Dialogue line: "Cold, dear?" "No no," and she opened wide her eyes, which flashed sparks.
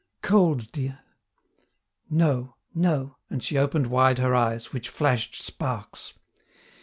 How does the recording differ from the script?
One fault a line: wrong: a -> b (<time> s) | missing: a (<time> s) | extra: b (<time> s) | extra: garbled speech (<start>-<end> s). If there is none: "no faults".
no faults